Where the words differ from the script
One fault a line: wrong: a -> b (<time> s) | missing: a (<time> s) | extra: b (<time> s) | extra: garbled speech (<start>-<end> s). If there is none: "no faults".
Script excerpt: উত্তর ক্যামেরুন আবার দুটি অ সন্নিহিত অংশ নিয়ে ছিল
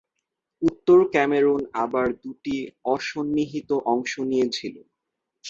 no faults